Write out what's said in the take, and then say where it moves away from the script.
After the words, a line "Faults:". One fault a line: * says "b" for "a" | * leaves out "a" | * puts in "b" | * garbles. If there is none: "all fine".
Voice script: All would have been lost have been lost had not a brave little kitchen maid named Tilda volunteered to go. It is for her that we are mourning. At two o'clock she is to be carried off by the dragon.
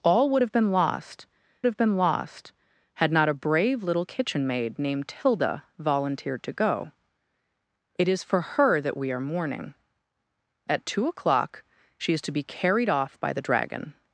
All would have been lost have been lost had not a brave little kitchen maid named Tilda volunteered to go. It is for her that we are mourning. At two o'clock she is to be carried off by the dragon.
Faults:
all fine